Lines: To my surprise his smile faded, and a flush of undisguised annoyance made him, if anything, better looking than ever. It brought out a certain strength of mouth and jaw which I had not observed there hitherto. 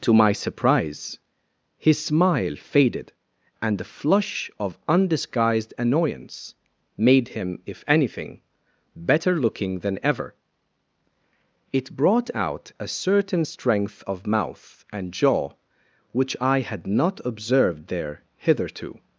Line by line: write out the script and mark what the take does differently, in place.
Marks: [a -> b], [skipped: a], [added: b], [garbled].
To my surprise his smile faded, and [a -> the] flush of undisguised annoyance made him, if anything, better looking than ever. It brought out a certain strength of mouth and jaw which I had not observed there hitherto.